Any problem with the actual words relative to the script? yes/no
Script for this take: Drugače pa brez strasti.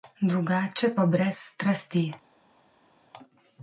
no